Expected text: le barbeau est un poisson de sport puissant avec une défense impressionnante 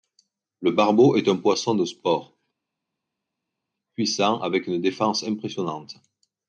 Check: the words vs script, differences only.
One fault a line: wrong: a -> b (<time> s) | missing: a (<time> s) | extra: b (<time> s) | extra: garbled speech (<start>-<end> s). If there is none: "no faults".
no faults